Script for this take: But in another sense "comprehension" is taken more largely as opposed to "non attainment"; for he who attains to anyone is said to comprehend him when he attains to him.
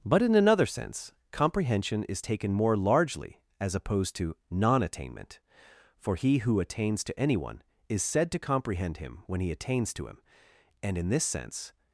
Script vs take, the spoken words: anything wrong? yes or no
yes